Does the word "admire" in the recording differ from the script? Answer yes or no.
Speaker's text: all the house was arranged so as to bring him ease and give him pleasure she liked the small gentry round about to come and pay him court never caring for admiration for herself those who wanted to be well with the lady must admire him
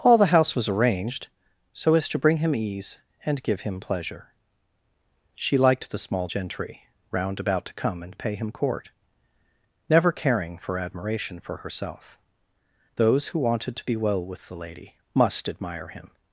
no